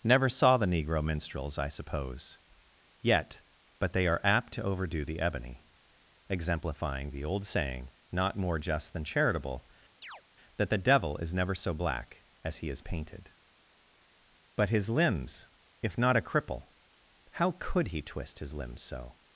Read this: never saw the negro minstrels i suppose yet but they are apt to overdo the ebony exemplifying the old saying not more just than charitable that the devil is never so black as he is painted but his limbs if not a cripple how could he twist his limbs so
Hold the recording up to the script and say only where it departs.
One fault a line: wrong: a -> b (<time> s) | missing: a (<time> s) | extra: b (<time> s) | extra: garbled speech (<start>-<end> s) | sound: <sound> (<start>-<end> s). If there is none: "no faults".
sound: chirp (10.0-10.2 s)